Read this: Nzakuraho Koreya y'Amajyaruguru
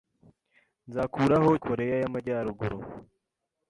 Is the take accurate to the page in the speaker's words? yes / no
yes